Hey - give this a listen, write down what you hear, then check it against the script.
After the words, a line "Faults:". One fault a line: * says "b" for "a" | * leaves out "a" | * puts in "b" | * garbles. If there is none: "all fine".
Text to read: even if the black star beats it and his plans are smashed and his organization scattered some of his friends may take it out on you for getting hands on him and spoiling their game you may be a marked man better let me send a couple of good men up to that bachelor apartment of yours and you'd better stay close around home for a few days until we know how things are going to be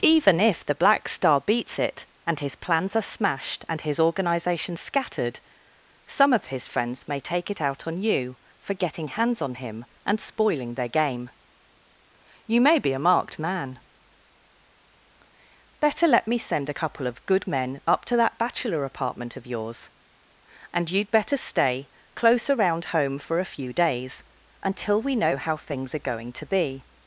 even if the black star beats it and his plans are smashed and his organization scattered some of his friends may take it out on you for getting hands on him and spoiling their game you may be a marked man better let me send a couple of good men up to that bachelor apartment of yours and you'd better stay close around home for a few days until we know how things are going to be
Faults:
all fine